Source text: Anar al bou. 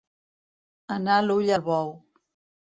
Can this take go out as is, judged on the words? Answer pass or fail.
fail